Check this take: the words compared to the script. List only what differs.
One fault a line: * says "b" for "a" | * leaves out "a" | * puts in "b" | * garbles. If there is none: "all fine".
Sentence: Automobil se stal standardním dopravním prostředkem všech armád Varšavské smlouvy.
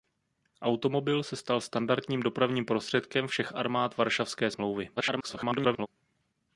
* garbles